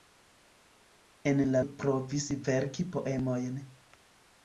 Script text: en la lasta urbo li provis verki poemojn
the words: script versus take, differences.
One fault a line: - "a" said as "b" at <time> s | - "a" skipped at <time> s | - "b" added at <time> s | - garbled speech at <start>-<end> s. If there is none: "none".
- "lasta urbo" skipped at 1.6 s